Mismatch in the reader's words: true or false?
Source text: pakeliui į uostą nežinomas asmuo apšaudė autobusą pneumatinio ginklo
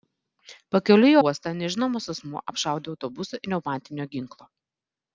false